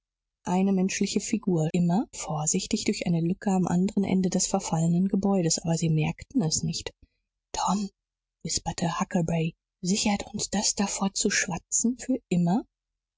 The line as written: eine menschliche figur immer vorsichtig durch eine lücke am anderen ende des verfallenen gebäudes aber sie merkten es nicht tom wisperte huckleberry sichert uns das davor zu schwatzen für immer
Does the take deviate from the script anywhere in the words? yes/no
no